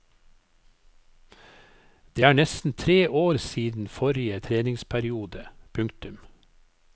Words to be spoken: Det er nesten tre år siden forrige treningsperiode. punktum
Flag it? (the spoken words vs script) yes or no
no